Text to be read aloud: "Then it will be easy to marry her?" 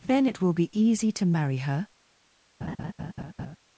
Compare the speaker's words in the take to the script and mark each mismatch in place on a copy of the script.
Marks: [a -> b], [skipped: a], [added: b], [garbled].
"Then it will be easy to marry her?"